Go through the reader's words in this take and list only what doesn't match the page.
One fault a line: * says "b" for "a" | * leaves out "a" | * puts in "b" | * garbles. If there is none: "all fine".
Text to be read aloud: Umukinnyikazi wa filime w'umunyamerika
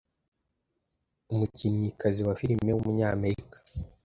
all fine